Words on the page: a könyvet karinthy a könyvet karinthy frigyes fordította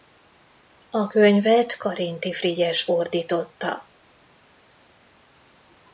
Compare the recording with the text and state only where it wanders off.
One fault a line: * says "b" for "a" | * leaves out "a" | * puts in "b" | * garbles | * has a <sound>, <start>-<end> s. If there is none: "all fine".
* leaves out "a könyvet karinthy"